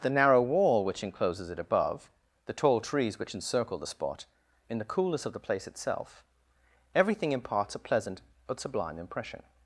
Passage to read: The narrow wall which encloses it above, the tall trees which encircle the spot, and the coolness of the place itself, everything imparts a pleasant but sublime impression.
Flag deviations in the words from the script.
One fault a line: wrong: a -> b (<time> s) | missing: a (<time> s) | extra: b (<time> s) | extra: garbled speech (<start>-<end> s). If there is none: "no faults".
wrong: and -> in (4.7 s)